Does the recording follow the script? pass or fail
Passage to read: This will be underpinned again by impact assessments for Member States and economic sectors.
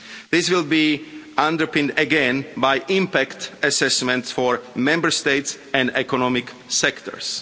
pass